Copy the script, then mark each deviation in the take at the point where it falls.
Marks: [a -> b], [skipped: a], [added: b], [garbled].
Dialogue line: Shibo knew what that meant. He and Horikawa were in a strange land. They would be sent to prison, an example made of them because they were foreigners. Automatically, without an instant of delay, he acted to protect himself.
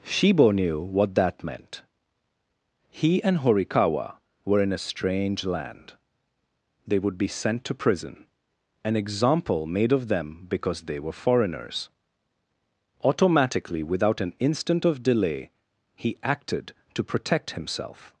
Shibo knew what that meant. He and Horikawa were in a strange land. They would be sent to prison, an example made of them because they were foreigners. Automatically, without an instant of delay, he acted to protect himself.